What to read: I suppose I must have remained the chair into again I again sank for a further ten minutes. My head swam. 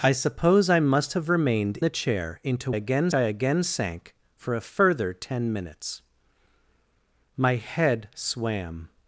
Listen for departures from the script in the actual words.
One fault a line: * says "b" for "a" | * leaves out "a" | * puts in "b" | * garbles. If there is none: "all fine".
all fine